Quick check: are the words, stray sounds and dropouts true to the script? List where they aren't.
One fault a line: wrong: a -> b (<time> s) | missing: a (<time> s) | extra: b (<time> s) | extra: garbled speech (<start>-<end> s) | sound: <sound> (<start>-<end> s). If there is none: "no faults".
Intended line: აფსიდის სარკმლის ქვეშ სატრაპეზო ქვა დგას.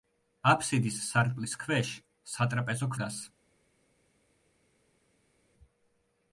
missing: ქვა (2.9 s)